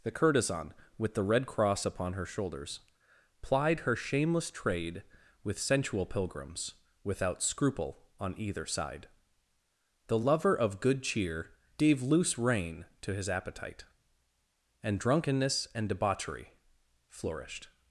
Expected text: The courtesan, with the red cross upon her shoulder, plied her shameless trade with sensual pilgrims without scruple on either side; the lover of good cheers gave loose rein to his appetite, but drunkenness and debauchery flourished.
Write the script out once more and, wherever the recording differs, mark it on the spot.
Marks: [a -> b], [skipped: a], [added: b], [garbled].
The courtesan, with the red cross upon her [shoulder, -> shoulders] plied her shameless trade with sensual pilgrims without scruple on either side; the lover of good [cheers -> cheer] gave loose rein to his appetite, [but -> and] drunkenness and debauchery flourished.